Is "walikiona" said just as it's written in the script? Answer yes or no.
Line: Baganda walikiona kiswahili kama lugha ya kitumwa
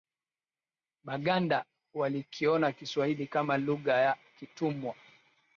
yes